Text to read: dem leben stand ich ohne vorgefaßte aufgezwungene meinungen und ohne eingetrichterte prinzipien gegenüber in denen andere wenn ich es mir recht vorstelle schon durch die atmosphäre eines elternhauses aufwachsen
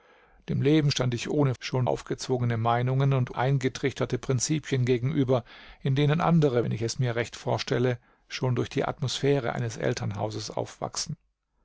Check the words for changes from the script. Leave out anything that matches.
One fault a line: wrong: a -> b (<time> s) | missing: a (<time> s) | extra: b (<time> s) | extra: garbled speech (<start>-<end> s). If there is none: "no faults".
wrong: vorgefaßte -> schon (1.6 s)
missing: ohne (3.3 s)